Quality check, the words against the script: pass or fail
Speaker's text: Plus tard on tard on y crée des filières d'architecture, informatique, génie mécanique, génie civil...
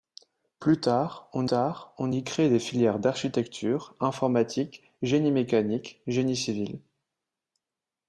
pass